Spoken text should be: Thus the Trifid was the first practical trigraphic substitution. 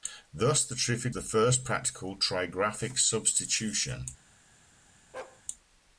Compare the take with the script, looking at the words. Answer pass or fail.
fail